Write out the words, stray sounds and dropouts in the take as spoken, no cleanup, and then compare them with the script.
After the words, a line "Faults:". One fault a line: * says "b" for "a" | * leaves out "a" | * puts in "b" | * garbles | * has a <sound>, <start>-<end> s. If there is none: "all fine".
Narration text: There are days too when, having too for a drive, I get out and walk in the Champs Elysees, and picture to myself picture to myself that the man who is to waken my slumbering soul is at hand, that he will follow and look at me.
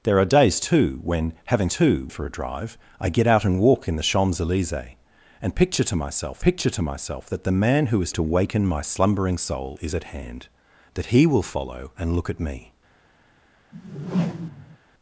There are days too when, having too for a drive, I get out and walk in the Champs Elysees, and picture to myself picture to myself that the man who is to waken my slumbering soul is at hand, that he will follow and look at me.
Faults:
* has a whoosh, 13.7-14.8 s